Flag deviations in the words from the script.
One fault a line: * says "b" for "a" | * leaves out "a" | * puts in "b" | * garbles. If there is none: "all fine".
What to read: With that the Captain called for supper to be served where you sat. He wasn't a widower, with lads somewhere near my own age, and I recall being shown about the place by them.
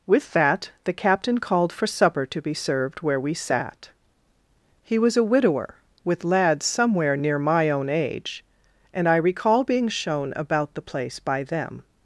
* says "we" for "you"
* says "was" for "wasn't"